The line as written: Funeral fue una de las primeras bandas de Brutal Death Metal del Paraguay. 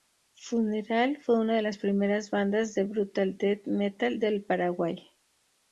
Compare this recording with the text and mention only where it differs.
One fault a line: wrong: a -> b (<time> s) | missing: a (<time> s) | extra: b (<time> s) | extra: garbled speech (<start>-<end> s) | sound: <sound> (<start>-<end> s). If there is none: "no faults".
no faults